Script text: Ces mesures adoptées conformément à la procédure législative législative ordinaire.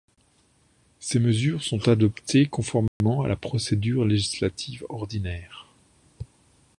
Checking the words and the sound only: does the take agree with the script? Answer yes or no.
no